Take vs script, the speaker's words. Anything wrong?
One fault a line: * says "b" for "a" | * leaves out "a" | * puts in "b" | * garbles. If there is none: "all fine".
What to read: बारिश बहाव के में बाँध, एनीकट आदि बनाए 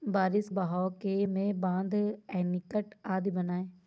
all fine